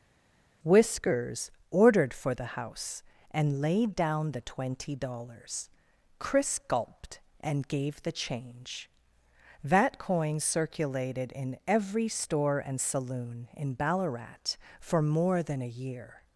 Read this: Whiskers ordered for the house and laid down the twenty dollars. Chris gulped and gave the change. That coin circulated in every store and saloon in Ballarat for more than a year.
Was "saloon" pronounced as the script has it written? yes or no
yes